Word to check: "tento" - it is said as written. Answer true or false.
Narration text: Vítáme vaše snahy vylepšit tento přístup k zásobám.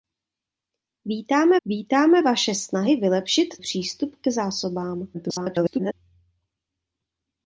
false